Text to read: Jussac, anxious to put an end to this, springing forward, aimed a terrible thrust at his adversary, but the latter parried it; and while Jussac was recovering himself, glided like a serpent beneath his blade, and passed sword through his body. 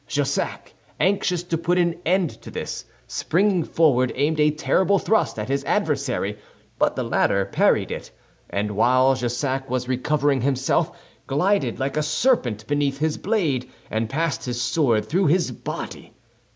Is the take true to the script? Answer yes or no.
no